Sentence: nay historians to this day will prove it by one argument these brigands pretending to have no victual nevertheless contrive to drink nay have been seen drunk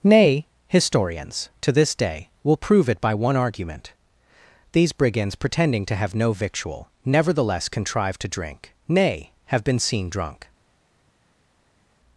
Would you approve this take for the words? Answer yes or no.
yes